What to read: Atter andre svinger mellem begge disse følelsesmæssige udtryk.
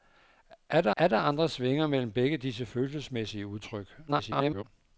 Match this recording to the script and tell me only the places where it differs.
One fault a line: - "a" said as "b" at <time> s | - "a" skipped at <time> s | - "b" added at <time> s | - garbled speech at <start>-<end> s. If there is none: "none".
- "atter" added at 1.0 s
- garbled speech at 4.1-4.6 s